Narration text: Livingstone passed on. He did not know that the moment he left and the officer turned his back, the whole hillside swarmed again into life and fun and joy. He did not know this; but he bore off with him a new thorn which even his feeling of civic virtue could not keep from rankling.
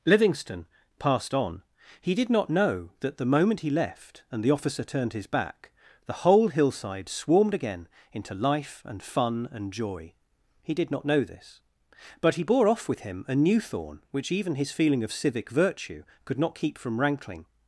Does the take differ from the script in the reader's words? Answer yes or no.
no